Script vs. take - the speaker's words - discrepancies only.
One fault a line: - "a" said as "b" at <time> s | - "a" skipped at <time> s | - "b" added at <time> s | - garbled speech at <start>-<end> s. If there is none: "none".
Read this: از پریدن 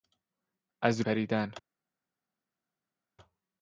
none